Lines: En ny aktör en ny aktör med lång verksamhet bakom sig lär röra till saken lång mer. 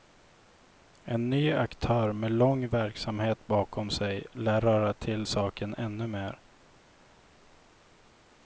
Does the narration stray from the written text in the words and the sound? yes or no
yes